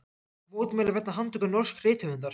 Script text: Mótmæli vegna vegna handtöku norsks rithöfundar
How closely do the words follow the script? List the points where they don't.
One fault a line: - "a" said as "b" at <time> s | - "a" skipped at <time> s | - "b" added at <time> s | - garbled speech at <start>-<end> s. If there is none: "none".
- "vegna" skipped at 1.1 s